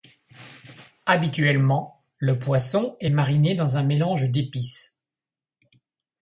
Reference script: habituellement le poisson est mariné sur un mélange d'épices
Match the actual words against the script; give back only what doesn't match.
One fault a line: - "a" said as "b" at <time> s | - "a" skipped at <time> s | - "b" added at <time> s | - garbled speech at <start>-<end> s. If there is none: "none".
- "sur" said as "dans" at 3.6 s